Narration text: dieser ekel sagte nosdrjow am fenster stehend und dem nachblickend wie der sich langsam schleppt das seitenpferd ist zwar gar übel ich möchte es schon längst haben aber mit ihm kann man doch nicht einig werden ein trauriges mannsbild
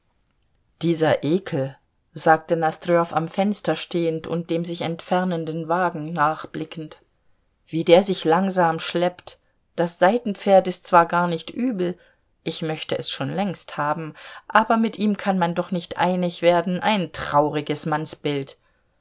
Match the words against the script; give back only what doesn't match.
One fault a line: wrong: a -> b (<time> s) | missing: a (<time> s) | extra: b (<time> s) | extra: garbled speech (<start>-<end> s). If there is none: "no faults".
extra: sich entfernenden wagen (4.7 s)
extra: nicht (11.3 s)